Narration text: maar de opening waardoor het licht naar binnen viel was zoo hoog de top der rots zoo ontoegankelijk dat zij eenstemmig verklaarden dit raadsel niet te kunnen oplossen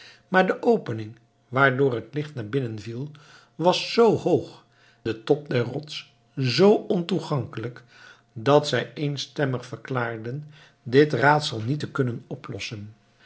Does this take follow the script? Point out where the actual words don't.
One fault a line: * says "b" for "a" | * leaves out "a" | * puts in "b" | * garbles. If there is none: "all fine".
all fine